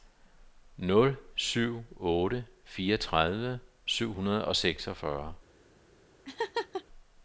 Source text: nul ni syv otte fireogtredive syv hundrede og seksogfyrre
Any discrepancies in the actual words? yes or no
yes